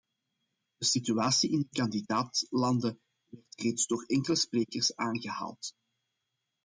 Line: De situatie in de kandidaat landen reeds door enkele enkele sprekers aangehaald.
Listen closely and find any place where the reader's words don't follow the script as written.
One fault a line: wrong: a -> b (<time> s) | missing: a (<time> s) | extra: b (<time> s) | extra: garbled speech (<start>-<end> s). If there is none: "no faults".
extra: werd (3.3 s)
missing: enkele (4.3 s)